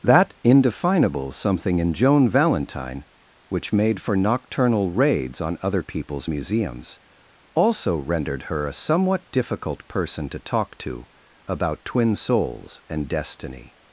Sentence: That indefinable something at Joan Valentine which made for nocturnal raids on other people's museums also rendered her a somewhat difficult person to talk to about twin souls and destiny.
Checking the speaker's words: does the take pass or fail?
fail